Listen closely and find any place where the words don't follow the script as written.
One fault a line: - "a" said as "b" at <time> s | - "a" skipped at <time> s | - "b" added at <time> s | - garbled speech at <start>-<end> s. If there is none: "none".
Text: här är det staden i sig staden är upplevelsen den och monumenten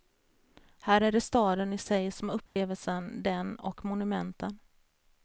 - "staden" said as "som" at 2.1 s